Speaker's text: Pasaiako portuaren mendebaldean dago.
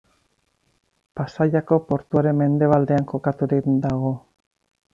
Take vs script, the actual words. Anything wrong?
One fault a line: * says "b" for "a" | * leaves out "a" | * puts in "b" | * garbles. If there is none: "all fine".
* puts in "kokaturik"